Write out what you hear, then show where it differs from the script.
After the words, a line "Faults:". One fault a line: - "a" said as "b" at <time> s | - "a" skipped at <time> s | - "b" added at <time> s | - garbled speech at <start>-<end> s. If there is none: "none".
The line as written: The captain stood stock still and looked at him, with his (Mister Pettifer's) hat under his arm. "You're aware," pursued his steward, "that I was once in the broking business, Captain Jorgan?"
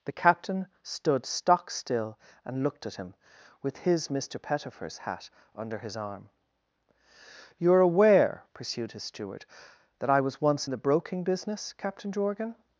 The captain stood stock still and looked at him, with his (Mister Pettifer's) hat under his arm. "You're aware," pursued his steward, "that I was once in the broking business, Captain Jorgan?"
Faults:
none